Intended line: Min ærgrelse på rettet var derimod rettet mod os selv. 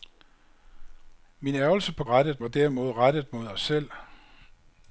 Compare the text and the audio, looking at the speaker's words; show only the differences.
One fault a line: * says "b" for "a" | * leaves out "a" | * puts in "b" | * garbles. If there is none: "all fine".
all fine